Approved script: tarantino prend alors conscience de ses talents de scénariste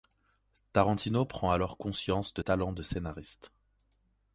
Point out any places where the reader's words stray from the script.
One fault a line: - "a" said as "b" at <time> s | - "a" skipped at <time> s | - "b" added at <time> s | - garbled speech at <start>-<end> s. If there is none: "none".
- "ses" skipped at 2.4 s